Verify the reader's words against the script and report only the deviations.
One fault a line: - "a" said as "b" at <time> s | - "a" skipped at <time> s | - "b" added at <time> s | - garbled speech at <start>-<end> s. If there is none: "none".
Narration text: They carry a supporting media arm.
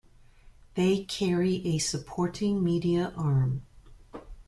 none